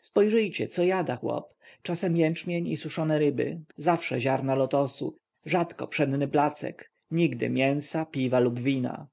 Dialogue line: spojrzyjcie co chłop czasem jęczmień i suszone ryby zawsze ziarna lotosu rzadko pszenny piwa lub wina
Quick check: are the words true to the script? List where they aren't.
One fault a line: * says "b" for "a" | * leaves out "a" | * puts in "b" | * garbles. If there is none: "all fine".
* puts in "jada"
* puts in "placek nigdy mięsa"